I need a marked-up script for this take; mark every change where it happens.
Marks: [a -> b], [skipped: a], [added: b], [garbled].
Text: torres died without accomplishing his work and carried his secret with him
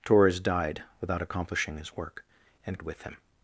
torres died without accomplishing his work and [skipped: carried his secret] with him